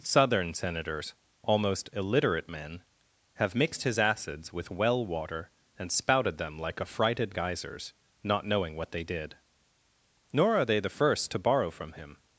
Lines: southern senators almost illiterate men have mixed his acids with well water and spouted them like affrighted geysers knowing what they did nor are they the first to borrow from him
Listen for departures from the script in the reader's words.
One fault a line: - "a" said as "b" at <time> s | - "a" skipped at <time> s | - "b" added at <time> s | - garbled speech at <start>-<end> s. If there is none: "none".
- "not" added at 8.2 s